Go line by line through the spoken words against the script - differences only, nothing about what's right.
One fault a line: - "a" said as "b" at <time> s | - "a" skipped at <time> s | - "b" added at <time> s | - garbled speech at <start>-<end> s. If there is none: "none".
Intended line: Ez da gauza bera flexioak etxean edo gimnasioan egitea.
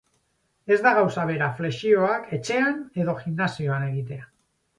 none